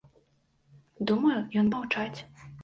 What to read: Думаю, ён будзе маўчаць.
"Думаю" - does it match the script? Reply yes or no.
yes